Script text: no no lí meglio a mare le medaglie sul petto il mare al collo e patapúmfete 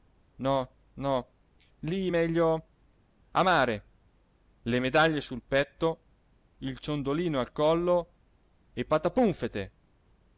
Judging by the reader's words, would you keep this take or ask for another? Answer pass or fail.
fail